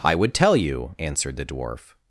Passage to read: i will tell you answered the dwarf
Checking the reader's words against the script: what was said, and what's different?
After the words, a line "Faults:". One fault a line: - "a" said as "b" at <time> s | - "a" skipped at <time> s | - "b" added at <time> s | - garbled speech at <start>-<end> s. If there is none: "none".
i would tell you answered the dwarf
Faults:
- "will" said as "would" at 0.1 s